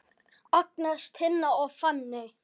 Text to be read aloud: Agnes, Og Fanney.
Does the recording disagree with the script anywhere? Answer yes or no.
yes